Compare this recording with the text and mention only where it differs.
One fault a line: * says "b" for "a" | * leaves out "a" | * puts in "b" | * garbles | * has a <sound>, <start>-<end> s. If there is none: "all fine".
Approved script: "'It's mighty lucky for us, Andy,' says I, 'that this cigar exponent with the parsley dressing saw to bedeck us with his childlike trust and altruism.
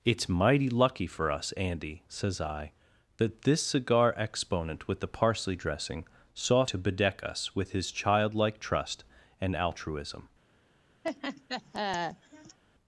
* has a laugh, 11.0-12.6 s